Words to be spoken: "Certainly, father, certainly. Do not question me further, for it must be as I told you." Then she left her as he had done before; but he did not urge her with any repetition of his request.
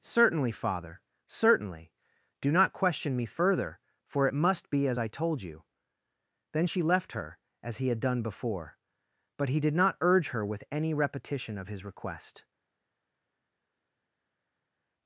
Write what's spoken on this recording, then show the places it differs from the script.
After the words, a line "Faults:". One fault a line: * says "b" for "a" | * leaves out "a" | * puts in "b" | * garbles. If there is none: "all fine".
"Certainly, father, certainly. Do not question me further, for it must be as I told you." Then she left her as he had done before; but he did not urge her with any repetition of his request.
Faults:
all fine